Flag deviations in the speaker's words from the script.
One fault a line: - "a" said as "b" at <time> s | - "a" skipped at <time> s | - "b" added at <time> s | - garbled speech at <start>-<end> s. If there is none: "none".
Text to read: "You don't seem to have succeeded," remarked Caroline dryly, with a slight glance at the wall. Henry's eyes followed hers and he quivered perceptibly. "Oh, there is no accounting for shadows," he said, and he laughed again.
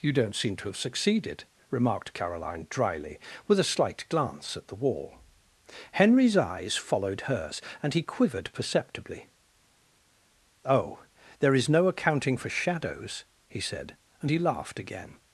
none